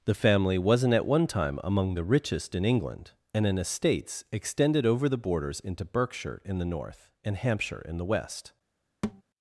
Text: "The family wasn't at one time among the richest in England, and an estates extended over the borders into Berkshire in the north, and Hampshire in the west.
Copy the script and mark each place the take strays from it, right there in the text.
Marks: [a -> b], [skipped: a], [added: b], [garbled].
"The family wasn't at one time among the richest in England, and an estates extended over the borders into Berkshire in the north, and Hampshire in the west.